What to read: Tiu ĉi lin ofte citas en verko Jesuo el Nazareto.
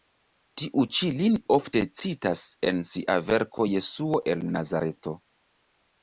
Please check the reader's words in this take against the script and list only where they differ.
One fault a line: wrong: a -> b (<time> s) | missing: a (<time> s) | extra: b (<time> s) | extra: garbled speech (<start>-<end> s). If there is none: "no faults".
extra: sia (2.9 s)